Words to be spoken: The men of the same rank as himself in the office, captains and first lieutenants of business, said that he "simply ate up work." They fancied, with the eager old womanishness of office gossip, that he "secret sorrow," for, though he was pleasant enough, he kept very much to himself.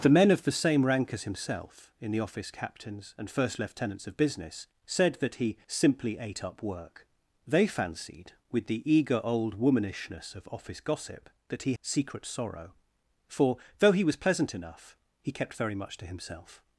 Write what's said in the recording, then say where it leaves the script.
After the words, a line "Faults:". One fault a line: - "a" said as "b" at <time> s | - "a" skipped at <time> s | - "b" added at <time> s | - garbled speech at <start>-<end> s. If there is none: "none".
The men of the same rank as himself in the office, captains and first lieutenants of business, said that he "simply ate up work." They fancied, with the eager old womanishness of office gossip, that he "secret sorrow," for, though he was pleasant enough, he kept very much to himself.
Faults:
none